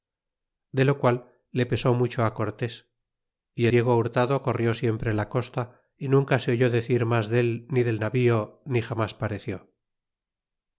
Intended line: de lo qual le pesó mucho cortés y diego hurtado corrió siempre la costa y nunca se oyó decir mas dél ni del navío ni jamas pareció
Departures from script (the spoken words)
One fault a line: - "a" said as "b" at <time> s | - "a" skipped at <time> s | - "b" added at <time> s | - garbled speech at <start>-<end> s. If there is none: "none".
none